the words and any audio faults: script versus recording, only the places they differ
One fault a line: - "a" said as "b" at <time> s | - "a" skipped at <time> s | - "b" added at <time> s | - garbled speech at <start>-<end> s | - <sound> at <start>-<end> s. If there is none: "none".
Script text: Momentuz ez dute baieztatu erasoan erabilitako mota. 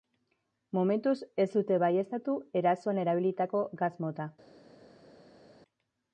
- "gas" added at 3.8 s